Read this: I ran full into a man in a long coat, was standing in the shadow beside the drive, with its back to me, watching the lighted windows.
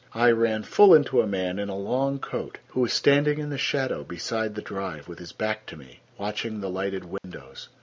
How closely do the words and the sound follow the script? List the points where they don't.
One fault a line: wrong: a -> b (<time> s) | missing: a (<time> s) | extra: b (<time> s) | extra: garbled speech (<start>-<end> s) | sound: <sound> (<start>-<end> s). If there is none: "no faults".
extra: who (2.7 s)
wrong: its -> his (5.2 s)
sound: dropout (7.2-7.2 s)